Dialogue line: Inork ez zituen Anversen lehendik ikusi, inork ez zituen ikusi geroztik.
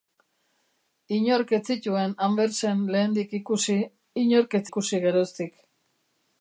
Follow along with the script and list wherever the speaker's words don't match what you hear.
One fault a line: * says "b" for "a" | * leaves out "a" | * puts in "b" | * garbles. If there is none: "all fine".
* leaves out "zituen"